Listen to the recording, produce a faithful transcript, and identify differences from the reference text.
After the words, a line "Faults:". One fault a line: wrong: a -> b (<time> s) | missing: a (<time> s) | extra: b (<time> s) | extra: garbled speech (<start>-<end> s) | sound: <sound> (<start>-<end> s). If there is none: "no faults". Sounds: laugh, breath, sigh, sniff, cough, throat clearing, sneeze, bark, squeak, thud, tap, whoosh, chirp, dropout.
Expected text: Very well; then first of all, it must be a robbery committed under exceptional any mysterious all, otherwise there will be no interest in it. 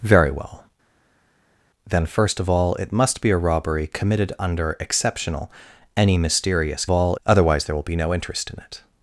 Very well; then first of all, it must be a robbery committed under exceptional any mysterious all, otherwise there will be no interest in it.
Faults:
no faults